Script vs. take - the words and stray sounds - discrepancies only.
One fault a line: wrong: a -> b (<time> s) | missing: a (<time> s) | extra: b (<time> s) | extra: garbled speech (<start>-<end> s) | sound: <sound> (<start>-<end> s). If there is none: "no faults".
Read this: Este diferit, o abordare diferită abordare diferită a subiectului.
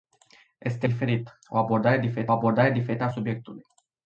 no faults